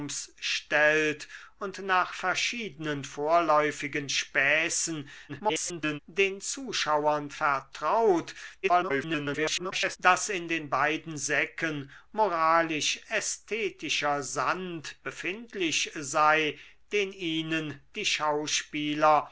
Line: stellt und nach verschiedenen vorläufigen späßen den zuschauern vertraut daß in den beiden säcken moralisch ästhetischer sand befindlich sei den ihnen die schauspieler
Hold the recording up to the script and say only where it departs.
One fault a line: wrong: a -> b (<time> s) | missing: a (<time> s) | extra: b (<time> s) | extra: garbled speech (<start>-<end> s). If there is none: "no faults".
extra: garbled speech (5.3-6.0 s)
extra: garbled speech (8.6-10.0 s)